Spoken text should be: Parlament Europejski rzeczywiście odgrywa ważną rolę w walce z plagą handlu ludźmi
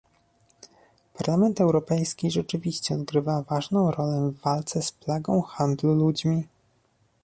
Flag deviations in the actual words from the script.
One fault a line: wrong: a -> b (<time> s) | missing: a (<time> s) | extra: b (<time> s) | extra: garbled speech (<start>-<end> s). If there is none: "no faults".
no faults